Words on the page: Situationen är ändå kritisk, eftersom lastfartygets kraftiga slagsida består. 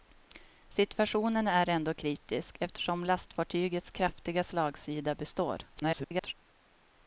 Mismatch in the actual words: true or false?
true